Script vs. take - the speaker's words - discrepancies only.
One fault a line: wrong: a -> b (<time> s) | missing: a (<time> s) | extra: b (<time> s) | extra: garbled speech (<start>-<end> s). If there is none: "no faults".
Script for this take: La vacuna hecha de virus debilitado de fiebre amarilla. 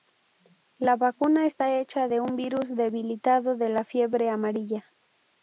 extra: está (1.4 s)
extra: un (2.2 s)
extra: la (3.7 s)